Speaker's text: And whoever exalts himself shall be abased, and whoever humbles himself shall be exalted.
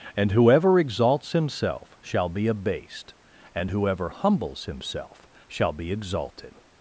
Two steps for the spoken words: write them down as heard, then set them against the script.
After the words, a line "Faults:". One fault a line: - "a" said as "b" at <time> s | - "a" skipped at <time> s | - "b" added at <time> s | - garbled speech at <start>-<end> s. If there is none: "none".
And whoever exalts himself shall be abased, and whoever humbles himself shall be exalted.
Faults:
none